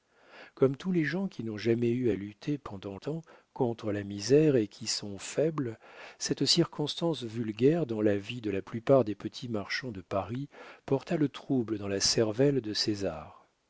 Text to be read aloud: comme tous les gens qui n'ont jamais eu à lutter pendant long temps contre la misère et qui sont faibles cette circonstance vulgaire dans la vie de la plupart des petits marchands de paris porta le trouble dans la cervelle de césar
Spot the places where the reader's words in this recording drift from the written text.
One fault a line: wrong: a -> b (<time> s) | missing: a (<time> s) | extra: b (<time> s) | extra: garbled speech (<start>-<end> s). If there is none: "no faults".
missing: long (3.0 s)